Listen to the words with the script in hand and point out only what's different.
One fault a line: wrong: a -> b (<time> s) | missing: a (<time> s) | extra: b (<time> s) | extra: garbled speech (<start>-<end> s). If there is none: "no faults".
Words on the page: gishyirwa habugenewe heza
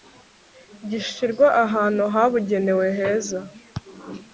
extra: ahantu (1.6 s)